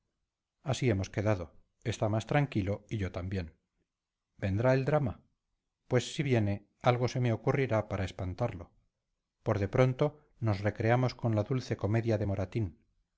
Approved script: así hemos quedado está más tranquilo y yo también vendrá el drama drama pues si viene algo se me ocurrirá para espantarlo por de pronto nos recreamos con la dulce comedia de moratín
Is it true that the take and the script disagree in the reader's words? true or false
true